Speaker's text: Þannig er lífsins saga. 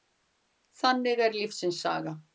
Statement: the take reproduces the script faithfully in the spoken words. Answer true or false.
true